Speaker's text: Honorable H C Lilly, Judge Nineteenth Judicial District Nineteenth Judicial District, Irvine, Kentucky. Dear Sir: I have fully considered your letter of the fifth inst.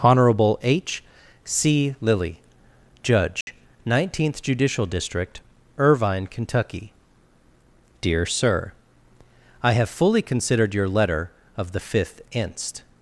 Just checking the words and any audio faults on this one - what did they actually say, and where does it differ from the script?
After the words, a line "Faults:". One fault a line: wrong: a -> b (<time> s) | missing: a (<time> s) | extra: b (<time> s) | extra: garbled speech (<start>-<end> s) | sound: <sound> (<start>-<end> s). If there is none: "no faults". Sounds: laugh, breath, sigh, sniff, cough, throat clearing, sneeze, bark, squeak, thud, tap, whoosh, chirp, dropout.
Honorable H C Lilly, Judge Nineteenth Judicial District, Irvine, Kentucky. Dear Sir: I have fully considered your letter of the fifth inst.
Faults:
sound: dropout (3.4-3.5 s)
missing: Nineteenth Judicial District (5.4 s)